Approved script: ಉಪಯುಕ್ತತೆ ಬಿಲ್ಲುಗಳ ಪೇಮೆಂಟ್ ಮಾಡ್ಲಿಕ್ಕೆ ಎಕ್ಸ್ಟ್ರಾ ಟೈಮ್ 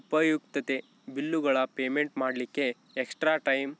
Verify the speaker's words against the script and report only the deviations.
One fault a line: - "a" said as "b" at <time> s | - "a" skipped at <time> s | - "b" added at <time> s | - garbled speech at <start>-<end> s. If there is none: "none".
none